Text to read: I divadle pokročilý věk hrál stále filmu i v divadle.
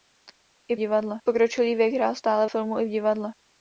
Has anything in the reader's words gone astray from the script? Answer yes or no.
no